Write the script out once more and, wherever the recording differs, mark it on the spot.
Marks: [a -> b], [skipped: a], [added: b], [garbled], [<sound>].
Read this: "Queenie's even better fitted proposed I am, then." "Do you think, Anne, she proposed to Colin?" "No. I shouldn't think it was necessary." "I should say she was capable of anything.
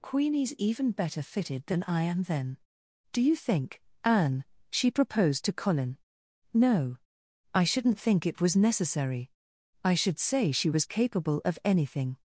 "Queenie's even better fitted [proposed -> than] I am, then." "Do you think, Anne, she proposed to Colin?" "No. I shouldn't think it was necessary." "I should say she was capable of anything.